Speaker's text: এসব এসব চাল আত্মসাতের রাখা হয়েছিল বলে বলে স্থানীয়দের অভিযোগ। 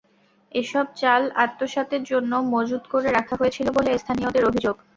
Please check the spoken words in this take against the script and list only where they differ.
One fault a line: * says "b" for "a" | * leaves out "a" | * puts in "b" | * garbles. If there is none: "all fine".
* leaves out "এসব"
* puts in "জন্য মজুত করে"
* leaves out "বলে"